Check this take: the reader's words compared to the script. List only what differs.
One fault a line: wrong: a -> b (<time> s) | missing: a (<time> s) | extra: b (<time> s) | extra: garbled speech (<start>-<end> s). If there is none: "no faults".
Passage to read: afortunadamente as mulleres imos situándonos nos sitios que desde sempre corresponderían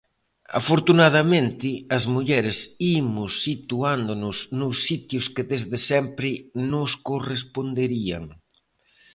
extra: nos (6.7 s)